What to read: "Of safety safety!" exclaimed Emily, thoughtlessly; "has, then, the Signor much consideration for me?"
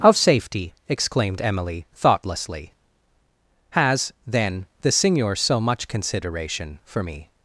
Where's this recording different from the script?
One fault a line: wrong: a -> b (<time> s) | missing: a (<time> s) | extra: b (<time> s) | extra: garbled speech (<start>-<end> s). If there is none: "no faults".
missing: safety (0.7 s)
extra: so (5.3 s)